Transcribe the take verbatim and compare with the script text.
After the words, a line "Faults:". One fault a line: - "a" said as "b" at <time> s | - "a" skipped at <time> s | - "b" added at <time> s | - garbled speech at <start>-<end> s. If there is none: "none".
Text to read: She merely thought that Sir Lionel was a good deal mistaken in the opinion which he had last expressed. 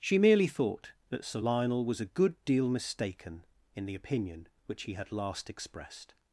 She merely thought that Sir Lionel was a good deal mistaken in the opinion which he had last expressed.
Faults:
none